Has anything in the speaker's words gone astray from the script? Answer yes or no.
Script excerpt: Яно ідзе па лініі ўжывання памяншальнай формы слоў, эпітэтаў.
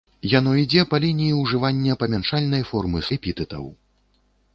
yes